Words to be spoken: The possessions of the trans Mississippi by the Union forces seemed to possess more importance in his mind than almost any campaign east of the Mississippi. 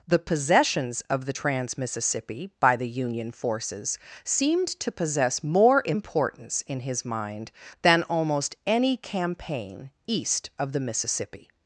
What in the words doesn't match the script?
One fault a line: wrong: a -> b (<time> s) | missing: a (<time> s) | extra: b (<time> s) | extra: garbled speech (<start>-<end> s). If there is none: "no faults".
no faults